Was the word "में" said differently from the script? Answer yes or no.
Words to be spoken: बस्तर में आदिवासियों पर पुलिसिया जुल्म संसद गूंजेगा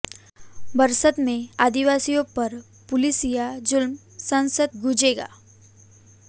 no